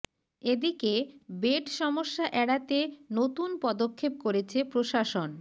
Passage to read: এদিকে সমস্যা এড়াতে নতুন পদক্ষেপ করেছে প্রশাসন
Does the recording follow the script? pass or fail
fail